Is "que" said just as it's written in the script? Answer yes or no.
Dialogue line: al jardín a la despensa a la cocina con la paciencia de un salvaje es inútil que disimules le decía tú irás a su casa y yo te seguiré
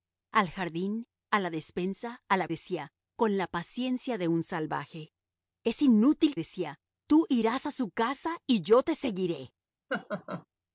no